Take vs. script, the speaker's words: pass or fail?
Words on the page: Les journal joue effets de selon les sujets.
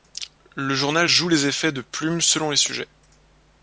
fail